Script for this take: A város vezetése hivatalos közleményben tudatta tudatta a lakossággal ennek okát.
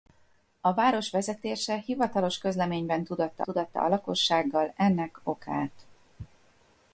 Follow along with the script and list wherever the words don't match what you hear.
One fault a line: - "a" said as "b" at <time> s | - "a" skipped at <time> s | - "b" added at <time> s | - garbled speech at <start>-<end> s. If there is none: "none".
none